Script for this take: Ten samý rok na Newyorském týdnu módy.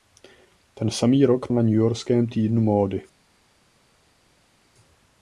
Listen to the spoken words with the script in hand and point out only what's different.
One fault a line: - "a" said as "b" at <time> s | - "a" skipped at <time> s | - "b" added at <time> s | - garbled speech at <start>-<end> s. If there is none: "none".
none